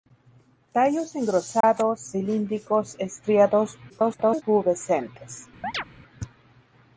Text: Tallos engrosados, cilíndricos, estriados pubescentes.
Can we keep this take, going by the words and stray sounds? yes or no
no